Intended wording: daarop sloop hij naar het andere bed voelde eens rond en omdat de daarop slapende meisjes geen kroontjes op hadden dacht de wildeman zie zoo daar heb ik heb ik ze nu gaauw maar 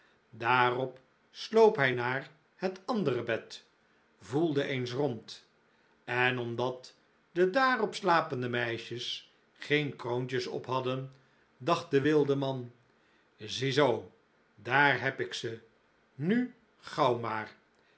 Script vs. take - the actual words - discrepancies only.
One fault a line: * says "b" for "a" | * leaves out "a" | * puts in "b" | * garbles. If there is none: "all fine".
* leaves out "heb ik"